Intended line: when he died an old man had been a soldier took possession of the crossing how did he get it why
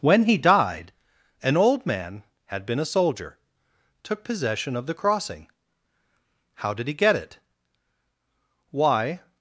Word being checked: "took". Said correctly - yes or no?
yes